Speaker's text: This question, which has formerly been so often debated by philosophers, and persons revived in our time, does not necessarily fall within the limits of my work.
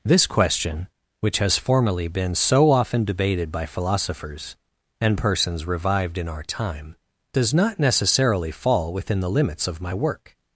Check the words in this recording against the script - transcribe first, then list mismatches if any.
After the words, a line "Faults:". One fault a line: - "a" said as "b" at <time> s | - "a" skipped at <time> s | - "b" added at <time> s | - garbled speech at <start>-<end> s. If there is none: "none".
This question, which has formerly been so often debated by philosophers, and persons revived in our time, does not necessarily fall within the limits of my work.
Faults:
none